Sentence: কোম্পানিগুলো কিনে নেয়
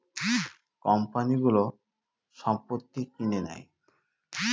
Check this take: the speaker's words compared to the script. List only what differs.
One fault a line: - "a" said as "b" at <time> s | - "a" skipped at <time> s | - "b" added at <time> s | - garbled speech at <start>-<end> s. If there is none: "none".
- "সম্পত্তি" added at 2.4 s